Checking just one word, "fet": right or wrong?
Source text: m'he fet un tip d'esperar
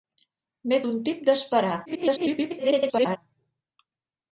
wrong